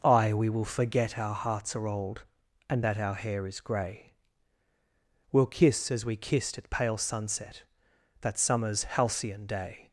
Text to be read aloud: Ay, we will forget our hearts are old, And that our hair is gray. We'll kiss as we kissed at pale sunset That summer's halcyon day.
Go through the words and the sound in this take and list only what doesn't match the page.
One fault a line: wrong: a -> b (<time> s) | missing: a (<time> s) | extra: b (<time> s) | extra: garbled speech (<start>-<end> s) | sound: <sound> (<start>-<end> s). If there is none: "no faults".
no faults